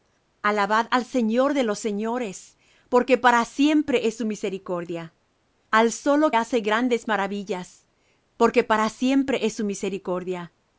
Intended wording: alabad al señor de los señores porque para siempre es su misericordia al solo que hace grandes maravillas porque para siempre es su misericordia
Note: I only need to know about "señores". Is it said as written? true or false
true